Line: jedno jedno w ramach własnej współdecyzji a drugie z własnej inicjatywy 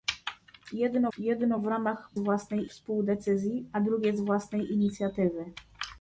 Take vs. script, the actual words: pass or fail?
pass